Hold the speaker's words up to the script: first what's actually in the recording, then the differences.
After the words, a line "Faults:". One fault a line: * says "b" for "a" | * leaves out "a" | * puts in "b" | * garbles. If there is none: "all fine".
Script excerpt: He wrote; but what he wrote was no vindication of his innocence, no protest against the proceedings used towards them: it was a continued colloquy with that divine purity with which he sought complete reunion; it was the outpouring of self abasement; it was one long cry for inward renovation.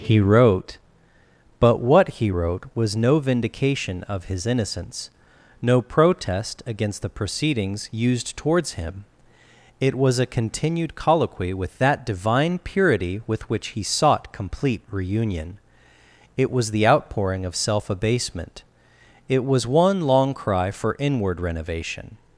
He wrote; but what he wrote was no vindication of his innocence, no protest against the proceedings used towards him: it was a continued colloquy with that divine purity with which he sought complete reunion; it was the outpouring of self abasement; it was one long cry for inward renovation.
Faults:
* says "him" for "them"